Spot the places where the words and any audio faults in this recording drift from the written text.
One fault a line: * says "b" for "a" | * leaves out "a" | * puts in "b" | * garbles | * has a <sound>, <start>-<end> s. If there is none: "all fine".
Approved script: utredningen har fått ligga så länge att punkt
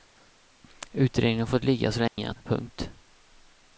* has a dropout, 2.1-2.2 s